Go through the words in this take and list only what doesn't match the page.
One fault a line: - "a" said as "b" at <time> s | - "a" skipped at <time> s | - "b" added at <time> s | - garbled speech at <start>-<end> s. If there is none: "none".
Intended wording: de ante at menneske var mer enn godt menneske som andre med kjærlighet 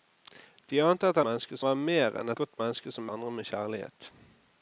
none